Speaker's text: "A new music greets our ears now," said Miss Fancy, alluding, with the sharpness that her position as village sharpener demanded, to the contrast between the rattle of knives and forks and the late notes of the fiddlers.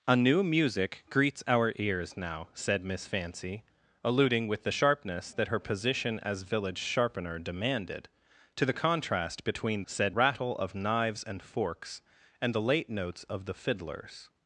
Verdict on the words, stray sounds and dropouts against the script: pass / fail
fail